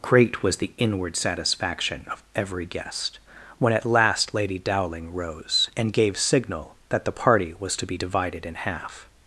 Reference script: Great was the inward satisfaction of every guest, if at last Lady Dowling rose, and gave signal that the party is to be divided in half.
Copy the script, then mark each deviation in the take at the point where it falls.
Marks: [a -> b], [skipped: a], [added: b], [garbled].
Great was the inward satisfaction of every guest, [if -> when] at last Lady Dowling rose, and gave signal that the party [is -> was] to be divided in half.